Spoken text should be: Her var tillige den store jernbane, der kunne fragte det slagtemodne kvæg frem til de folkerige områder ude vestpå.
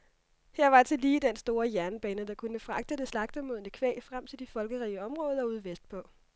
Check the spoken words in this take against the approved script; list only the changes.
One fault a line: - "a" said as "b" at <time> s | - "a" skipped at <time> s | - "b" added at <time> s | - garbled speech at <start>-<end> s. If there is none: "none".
none